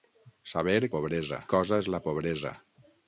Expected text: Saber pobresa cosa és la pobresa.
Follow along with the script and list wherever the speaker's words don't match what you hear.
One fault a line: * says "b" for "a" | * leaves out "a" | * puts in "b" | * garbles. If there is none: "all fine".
all fine